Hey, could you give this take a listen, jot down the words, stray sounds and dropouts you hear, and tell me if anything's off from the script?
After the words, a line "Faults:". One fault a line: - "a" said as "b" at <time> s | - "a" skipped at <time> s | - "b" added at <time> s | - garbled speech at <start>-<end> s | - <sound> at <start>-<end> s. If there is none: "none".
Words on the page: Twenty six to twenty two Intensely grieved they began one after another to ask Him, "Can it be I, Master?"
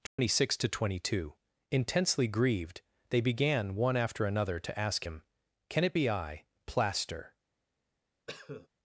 Twenty six to twenty two Intensely grieved they began one after another to ask Him, "Can it be I, Plaster?"
Faults:
- dropout at 0.1-0.2 s
- "Master" said as "Plaster" at 6.7 s
- cough at 8.3-8.7 s